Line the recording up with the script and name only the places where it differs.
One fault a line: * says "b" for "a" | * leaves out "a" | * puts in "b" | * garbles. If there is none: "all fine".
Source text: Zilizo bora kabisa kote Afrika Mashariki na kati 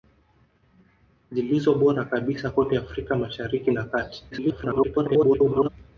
* garbles